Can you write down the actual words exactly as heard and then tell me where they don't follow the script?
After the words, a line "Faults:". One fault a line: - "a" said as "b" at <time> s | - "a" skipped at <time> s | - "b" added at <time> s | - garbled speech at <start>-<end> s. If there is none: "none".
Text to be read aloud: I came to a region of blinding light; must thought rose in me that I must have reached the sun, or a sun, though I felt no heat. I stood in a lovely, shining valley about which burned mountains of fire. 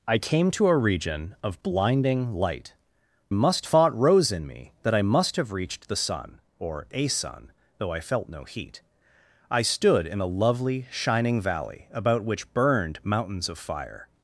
I came to a region of blinding light; must thought rose in me that I must have reached the sun, or a sun, though I felt no heat. I stood in a lovely, shining valley about which burned mountains of fire.
Faults:
none